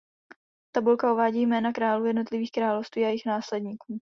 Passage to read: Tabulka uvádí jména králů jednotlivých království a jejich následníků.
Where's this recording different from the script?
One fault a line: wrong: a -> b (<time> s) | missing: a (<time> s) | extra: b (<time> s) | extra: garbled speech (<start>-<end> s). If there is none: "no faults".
no faults